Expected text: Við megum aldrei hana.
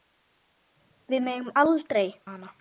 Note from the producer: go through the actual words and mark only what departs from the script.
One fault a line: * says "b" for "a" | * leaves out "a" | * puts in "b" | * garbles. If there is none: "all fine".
all fine